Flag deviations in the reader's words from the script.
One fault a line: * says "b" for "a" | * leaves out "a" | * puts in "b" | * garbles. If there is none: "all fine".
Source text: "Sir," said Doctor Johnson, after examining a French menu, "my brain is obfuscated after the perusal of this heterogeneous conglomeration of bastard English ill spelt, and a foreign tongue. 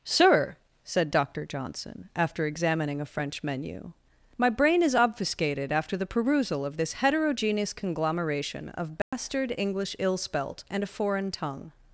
all fine